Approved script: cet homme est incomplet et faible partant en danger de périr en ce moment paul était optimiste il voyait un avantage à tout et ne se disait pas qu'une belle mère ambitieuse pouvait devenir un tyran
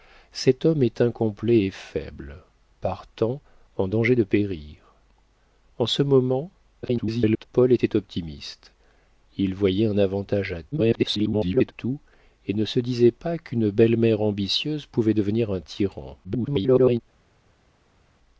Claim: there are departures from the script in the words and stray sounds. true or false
true